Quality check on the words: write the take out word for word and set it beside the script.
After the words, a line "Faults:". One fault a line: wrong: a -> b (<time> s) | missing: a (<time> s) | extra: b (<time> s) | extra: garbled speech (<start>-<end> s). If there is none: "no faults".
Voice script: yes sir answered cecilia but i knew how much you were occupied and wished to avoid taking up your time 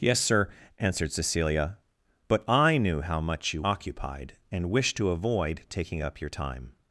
yes sir answered cecilia but i knew how much you occupied and wished to avoid taking up your time
Faults:
missing: were (3.6 s)